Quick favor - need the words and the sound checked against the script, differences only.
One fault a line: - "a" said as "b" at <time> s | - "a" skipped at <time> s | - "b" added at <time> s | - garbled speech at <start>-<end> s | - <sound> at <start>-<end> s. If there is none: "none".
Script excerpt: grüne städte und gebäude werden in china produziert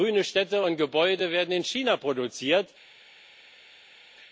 none